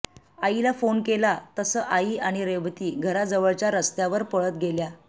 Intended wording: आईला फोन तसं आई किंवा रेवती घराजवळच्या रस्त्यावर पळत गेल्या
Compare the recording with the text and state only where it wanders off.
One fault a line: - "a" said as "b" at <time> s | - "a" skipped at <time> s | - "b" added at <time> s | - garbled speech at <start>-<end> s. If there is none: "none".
- "केला" added at 1.0 s
- "किंवा" said as "आणि" at 2.2 s